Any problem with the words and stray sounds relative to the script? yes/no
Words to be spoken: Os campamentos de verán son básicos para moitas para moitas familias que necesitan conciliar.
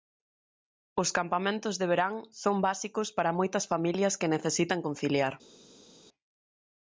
yes